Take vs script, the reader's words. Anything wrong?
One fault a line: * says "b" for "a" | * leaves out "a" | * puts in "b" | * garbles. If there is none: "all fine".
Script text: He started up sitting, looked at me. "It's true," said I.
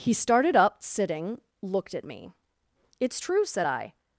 all fine